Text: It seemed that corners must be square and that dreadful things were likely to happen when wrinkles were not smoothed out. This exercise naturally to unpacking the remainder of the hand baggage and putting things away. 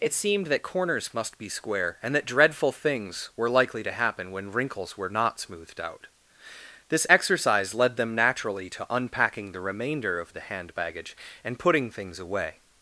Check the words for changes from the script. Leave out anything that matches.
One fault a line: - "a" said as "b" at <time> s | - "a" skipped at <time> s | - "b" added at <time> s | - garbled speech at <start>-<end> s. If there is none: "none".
- "led them" added at 7.7 s